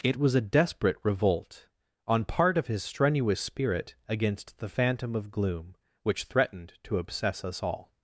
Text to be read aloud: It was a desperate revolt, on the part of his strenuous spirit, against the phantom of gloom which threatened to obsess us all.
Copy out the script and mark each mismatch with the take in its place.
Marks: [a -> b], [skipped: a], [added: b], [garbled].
It was a desperate revolt, on [skipped: the] part of his strenuous spirit, against the phantom of gloom which threatened to obsess us all.